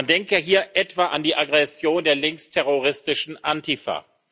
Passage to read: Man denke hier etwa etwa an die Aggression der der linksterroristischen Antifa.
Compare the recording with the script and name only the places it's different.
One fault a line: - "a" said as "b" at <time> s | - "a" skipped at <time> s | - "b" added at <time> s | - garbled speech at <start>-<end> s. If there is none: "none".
- "etwa" skipped at 1.1 s
- "der" skipped at 2.1 s